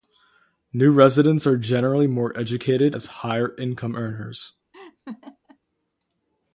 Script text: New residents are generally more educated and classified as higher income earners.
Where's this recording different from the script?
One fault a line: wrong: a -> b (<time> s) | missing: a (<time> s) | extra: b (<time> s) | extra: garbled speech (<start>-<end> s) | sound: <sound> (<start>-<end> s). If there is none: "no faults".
missing: and classified (3.0 s)
sound: laugh (4.7-5.6 s)